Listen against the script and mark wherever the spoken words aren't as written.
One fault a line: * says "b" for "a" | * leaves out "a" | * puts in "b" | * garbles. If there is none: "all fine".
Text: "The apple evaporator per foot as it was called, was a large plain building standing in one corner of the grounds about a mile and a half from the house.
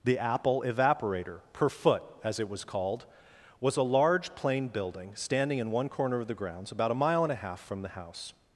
all fine